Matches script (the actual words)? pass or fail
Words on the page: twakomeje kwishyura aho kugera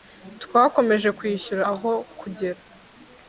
pass